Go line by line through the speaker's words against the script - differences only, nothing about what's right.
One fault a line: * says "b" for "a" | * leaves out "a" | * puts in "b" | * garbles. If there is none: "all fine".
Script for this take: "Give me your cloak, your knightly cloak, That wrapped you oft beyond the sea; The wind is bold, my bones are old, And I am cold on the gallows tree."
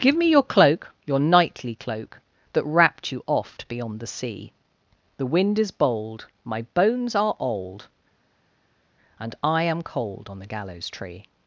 all fine